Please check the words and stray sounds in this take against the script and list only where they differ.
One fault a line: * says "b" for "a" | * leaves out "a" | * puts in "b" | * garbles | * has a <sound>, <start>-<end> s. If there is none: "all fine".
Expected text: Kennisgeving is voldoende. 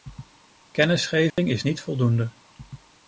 * has a dropout, 1.3-1.4 s
* puts in "niet"